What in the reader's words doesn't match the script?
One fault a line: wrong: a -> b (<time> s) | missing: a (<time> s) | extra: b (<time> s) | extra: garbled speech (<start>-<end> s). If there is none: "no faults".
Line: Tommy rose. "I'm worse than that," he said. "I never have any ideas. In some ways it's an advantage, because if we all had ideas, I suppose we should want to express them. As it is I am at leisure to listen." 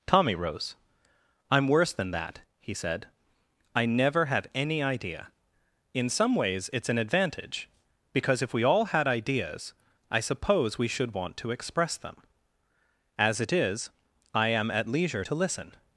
wrong: ideas -> idea (4.8 s)